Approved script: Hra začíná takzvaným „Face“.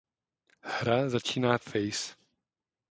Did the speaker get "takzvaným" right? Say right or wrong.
wrong